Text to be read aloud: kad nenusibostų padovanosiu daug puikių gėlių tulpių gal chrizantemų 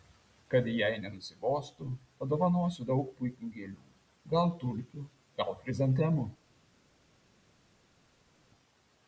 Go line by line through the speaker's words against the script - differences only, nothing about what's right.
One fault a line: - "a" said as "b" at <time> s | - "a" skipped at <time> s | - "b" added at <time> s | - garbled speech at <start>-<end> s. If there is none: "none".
- "jai" added at 0.8 s
- "gal" added at 4.4 s